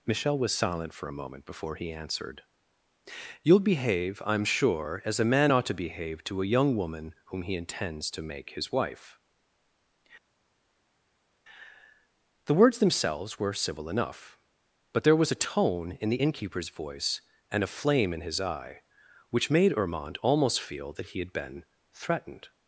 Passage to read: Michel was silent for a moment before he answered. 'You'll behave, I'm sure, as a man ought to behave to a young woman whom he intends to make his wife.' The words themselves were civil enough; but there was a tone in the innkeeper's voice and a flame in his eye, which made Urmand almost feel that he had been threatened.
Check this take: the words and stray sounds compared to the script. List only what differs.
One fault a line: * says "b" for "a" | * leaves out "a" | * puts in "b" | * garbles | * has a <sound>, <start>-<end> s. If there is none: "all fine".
all fine